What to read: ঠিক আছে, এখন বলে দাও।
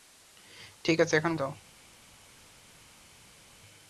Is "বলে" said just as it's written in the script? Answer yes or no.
no